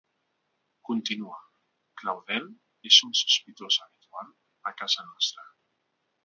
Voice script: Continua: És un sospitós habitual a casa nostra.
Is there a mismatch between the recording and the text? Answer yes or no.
yes